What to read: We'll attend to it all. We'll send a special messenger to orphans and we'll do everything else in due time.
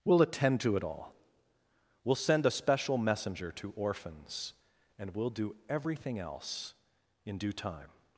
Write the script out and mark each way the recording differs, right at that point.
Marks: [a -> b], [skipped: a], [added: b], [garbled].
We'll attend to it all. We'll send a special messenger to orphans and we'll do everything else in due time.